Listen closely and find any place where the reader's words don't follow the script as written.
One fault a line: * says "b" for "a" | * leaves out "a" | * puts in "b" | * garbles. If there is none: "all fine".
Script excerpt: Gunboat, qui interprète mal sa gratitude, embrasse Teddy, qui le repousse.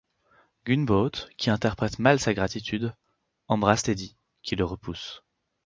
all fine